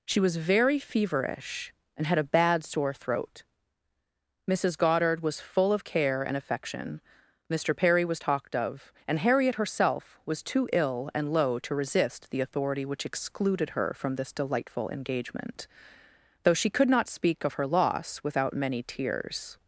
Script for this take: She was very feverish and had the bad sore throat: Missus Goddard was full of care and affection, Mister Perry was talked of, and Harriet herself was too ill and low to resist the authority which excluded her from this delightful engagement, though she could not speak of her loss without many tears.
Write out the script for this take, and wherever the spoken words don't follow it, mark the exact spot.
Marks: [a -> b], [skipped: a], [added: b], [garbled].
She was very feverish and had [the -> a] bad sore throat: Missus Goddard was full of care and affection, Mister Perry was talked of, and Harriet herself was too ill and low to resist the authority which excluded her from this delightful engagement, though she could not speak of her loss without many tears.